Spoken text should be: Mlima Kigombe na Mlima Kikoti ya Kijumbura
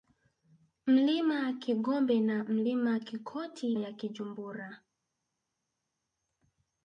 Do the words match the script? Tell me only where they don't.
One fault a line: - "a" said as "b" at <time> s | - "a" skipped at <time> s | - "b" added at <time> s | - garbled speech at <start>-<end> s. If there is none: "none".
none